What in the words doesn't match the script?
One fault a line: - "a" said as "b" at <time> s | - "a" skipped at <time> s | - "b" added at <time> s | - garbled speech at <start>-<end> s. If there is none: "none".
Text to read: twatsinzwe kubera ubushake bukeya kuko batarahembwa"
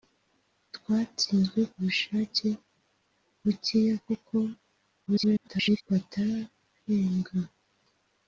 - "kubera" skipped at 1.6 s
- garbled speech at 5.1-5.8 s